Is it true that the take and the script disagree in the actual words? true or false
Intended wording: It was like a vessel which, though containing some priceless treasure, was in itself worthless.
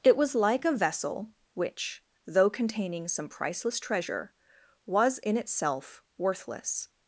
false